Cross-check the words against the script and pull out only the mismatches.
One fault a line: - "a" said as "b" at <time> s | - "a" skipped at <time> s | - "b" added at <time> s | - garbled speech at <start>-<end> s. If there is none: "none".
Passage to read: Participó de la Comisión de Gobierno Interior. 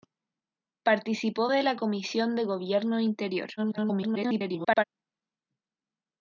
- garbled speech at 3.6-4.8 s